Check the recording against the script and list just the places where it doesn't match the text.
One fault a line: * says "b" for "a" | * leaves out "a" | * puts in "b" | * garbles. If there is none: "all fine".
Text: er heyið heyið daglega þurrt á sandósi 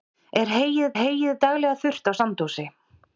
all fine